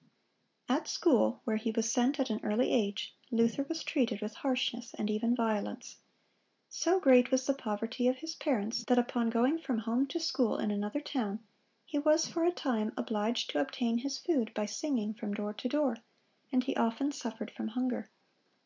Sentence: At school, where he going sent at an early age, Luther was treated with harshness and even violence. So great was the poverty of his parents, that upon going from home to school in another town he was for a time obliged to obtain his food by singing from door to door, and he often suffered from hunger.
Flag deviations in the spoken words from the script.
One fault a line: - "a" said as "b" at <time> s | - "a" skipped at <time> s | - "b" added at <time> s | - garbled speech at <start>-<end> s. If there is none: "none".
- "going" said as "was" at 1.7 s